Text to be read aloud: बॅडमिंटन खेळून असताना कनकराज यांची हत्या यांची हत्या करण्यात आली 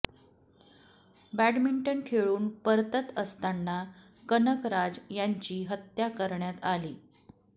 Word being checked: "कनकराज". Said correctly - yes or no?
yes